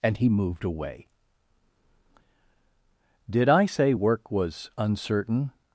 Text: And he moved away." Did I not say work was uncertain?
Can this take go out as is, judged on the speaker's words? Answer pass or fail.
fail